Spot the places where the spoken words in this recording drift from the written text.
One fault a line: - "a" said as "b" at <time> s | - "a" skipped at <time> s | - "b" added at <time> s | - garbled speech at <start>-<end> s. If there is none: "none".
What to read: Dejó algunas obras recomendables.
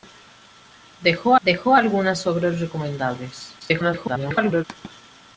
- "dejó" added at 1.4 s
- garbled speech at 3.6-4.6 s